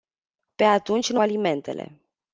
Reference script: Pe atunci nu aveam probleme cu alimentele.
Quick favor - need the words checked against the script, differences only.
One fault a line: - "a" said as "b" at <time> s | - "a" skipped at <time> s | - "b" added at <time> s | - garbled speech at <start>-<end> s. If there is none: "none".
- "aveam probleme cu" skipped at 1.2 s